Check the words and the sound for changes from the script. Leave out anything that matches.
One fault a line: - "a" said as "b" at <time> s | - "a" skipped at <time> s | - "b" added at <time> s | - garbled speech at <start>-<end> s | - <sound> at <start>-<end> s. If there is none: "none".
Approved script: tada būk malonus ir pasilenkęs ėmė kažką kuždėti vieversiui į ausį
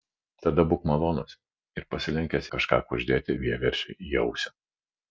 - "ėmė" skipped at 2.5 s